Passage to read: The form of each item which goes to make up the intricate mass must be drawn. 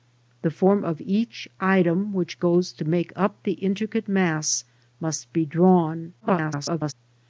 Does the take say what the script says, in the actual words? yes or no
no